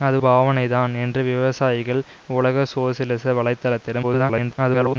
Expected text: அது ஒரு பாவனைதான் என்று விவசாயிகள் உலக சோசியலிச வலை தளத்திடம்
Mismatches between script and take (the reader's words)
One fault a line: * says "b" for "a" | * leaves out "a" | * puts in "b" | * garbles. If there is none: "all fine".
* leaves out "ஒரு"
* garbles